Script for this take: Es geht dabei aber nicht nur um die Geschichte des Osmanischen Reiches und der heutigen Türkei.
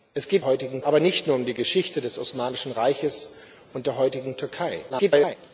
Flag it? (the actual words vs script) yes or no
yes